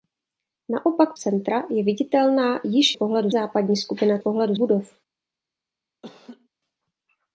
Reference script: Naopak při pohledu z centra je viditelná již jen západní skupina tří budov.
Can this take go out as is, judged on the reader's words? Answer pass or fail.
fail